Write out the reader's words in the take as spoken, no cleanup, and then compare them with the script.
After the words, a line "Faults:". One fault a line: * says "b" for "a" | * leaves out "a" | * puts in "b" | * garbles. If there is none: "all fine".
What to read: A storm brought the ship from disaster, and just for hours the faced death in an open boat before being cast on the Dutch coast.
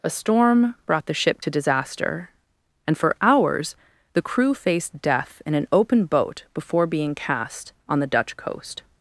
A storm brought the ship to disaster, and for hours the crew faced death in an open boat before being cast on the Dutch coast.
Faults:
* says "to" for "from"
* leaves out "just"
* puts in "crew"